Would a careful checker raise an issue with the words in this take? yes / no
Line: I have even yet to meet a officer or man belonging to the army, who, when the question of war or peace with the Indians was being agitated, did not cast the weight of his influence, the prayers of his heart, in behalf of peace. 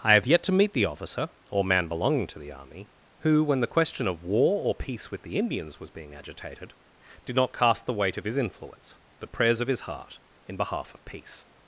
yes